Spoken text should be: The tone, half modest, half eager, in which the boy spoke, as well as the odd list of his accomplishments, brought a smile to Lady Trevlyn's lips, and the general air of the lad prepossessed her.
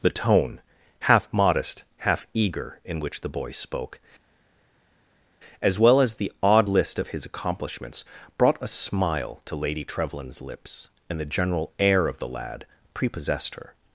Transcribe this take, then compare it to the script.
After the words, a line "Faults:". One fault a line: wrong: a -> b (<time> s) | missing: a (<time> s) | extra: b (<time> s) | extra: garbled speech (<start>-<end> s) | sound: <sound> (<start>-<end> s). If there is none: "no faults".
The tone, half modest, half eager, in which the boy spoke, as well as the odd list of his accomplishments, brought a smile to Lady Trevlyn's lips, and the general air of the lad prepossessed her.
Faults:
no faults